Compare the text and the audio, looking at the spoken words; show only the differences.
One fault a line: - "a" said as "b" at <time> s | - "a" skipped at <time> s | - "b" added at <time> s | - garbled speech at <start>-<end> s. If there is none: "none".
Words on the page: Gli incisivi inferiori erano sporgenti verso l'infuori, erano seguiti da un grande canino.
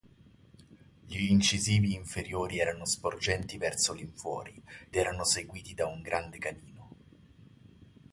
none